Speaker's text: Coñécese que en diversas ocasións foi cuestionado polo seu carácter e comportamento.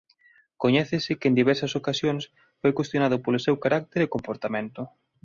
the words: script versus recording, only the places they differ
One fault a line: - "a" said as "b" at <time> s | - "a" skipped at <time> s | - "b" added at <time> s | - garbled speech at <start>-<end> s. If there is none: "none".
none